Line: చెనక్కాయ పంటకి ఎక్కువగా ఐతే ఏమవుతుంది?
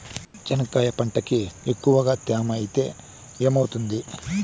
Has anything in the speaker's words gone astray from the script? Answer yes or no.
yes